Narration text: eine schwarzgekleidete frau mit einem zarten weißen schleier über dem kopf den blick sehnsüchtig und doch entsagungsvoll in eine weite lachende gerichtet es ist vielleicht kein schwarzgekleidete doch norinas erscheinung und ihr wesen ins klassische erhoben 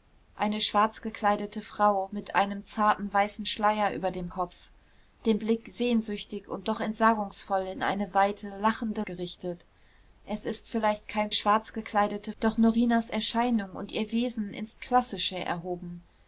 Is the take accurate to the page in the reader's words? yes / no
yes